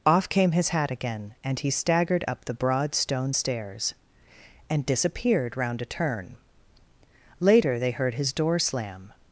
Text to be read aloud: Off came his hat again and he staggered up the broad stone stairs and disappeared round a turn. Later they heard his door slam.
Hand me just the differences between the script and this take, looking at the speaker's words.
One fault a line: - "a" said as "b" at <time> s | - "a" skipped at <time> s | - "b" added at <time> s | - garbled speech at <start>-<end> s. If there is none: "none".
none